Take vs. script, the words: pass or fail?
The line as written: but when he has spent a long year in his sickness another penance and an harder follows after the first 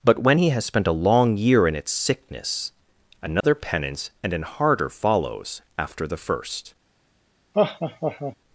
fail